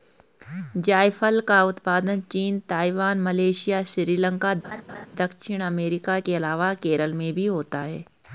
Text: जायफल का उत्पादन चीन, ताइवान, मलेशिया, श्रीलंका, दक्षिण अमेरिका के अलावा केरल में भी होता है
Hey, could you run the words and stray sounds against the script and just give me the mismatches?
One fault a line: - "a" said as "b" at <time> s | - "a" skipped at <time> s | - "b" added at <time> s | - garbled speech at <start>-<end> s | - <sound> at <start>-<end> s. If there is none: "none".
- laugh at 4.6-5.1 s